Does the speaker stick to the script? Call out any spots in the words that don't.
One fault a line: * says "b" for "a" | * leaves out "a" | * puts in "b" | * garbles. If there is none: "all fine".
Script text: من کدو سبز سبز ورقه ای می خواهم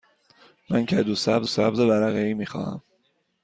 all fine